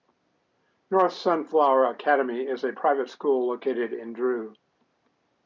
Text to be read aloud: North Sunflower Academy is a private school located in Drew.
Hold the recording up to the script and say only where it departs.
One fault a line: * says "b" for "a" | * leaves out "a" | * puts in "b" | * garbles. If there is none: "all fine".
all fine